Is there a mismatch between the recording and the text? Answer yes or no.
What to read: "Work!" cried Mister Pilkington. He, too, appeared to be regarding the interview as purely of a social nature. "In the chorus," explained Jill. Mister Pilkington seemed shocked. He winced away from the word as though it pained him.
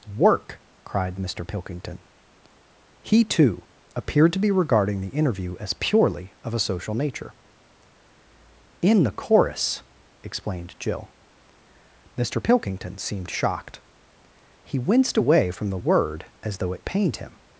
no